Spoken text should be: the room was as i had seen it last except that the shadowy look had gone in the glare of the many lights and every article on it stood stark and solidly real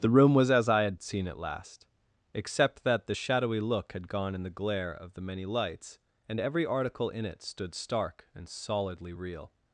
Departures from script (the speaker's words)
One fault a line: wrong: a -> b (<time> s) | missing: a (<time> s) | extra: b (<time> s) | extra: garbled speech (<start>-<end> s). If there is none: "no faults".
wrong: on -> in (7.1 s)